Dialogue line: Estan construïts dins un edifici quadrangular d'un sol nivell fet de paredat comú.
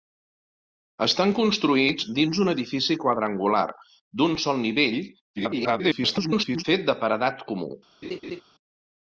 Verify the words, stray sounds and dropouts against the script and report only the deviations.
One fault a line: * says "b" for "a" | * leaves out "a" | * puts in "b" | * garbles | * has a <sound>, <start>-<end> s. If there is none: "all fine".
* garbles
* has a laugh, 8.0-8.4 s